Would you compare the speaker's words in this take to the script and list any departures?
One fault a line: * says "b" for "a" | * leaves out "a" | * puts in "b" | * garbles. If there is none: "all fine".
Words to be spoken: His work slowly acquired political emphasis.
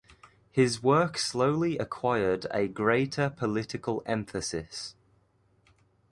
* puts in "a greater"